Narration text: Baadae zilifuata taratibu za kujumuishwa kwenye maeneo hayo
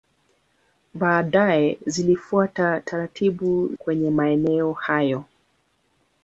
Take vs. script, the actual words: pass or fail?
fail